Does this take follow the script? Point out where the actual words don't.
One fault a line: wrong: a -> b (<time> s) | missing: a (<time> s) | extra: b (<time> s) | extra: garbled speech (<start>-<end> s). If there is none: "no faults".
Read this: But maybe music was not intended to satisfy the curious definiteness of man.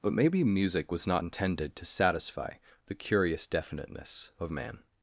no faults